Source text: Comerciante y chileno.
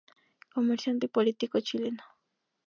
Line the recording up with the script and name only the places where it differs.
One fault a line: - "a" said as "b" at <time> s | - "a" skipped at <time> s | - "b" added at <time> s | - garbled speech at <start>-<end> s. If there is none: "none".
- "político" added at 1.1 s